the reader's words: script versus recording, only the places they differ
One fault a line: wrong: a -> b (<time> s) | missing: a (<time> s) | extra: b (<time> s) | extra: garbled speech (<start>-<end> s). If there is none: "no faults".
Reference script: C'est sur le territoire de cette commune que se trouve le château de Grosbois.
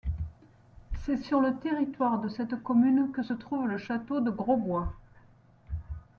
no faults